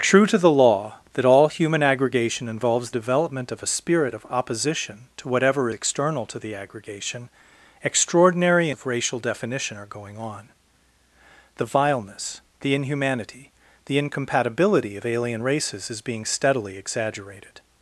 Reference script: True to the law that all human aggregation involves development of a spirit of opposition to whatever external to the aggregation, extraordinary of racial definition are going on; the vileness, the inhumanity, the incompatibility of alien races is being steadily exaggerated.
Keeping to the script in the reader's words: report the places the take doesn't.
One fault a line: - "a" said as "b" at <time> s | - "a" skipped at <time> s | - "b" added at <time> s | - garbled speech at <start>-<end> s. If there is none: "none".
none